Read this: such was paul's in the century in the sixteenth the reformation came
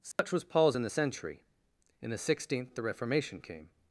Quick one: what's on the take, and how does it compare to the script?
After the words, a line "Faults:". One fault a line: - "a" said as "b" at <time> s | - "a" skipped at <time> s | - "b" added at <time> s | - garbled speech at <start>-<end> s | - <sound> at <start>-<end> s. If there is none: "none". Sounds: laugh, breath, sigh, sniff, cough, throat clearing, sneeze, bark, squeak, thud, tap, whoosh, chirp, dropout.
such was paul's in the century in the sixteenth the reformation came
Faults:
- dropout at 0.1-0.2 s